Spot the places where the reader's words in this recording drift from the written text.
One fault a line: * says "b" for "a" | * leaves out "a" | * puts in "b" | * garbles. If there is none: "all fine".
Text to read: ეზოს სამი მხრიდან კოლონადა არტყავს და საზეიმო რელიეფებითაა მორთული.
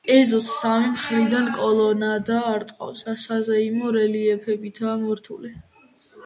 all fine